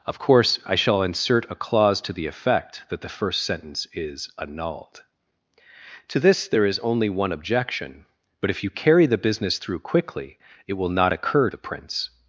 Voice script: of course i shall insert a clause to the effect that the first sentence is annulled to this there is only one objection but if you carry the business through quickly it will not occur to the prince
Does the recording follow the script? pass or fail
fail